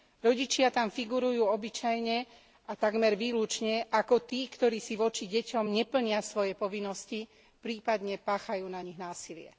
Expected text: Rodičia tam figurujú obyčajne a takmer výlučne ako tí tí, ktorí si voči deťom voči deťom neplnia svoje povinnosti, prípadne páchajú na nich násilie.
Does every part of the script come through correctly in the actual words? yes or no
no